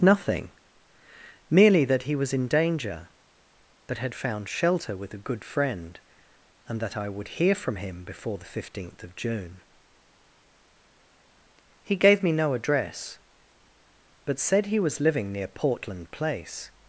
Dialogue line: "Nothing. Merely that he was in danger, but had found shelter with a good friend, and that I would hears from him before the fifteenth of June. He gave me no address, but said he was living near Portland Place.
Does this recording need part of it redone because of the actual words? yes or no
yes